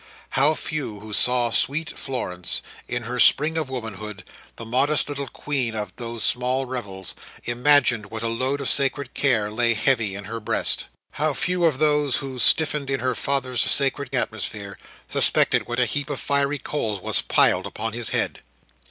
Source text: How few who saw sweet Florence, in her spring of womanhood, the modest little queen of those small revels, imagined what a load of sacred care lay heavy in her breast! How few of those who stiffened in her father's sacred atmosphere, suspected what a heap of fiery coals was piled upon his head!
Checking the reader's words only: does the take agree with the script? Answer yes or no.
yes